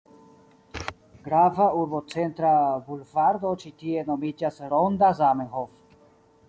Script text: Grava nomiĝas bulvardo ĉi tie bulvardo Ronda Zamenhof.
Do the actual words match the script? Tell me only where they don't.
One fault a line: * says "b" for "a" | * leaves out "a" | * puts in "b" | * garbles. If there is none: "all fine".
* says "urbocentra" for "nomiĝas"
* says "nomiĝas" for "bulvardo"